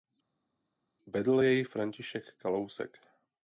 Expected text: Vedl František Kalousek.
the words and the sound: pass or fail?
fail